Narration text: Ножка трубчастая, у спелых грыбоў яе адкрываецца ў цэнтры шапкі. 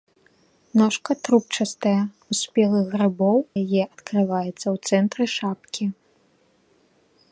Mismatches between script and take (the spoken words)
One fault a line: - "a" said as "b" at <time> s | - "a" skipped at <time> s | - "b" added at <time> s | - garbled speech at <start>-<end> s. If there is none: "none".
none